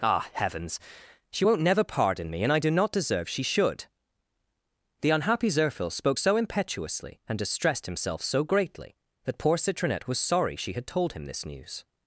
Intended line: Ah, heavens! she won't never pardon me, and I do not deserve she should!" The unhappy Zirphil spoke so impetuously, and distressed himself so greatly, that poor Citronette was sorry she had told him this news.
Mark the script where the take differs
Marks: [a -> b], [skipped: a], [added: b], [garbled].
Ah, heavens! she won't never pardon me, and I do not deserve she should!" The unhappy Zirphil spoke so impetuously, and distressed himself so greatly, that poor Citronette was sorry she had told him this news.